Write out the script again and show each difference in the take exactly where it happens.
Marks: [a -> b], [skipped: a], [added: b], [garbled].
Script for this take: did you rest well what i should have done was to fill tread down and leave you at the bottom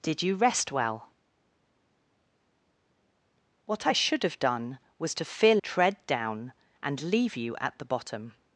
did you rest well what i should have done was to fill tread down and leave you at the bottom